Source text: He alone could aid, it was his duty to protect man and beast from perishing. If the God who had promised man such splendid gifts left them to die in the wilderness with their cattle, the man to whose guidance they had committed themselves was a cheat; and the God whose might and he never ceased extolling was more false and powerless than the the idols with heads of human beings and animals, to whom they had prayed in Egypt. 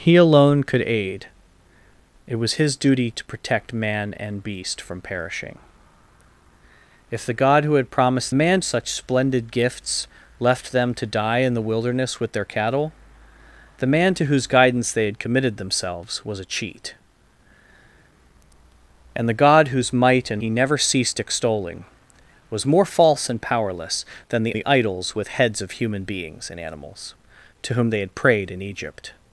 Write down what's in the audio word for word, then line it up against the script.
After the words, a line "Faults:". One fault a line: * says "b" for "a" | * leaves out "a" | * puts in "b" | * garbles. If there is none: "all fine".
He alone could aid, it was his duty to protect man and beast from perishing. If the God who had promised man such splendid gifts left them to die in the wilderness with their cattle, the man to whose guidance they had committed themselves was a cheat; and the God whose might and he never ceased extolling was more false and powerless than the the idols with heads of human beings and animals, to whom they had prayed in Egypt.
Faults:
all fine